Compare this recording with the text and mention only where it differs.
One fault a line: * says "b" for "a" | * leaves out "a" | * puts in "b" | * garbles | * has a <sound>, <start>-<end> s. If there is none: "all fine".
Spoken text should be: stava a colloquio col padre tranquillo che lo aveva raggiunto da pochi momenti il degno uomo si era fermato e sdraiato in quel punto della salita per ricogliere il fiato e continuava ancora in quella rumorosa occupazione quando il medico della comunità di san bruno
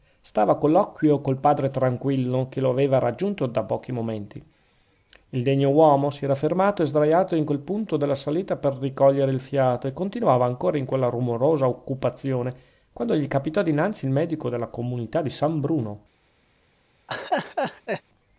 * puts in "gli capitò dinanzi"
* has a laugh, 17.1-18.0 s